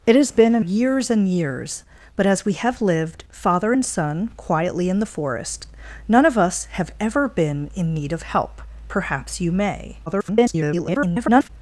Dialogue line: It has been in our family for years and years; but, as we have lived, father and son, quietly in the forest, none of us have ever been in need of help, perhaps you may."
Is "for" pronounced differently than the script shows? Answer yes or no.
yes